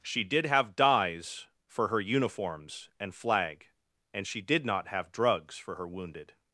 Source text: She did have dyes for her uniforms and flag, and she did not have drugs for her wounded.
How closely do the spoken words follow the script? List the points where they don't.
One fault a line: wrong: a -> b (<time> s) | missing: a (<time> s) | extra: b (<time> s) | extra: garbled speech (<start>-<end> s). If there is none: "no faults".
no faults